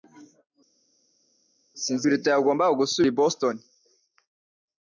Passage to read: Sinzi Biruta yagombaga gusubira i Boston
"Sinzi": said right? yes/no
yes